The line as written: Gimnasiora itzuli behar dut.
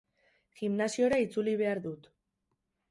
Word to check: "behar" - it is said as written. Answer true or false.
true